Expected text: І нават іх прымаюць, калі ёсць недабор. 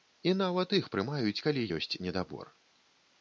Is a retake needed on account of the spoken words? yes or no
no